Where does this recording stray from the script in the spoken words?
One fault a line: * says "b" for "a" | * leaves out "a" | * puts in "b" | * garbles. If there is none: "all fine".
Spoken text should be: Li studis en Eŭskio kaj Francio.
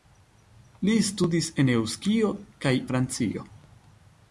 all fine